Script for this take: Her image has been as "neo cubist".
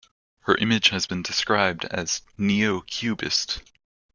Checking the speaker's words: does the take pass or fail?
fail